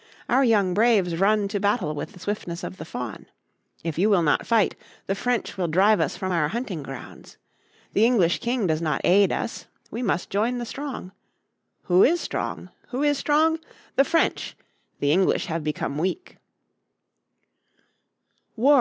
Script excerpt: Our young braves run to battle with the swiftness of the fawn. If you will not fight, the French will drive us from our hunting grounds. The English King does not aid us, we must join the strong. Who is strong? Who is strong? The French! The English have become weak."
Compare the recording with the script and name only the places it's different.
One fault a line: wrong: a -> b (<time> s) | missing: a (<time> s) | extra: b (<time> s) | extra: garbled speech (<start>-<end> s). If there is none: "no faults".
no faults